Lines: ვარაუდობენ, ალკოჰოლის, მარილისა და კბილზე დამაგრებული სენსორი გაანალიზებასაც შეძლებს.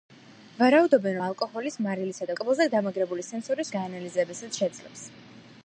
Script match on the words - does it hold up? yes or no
yes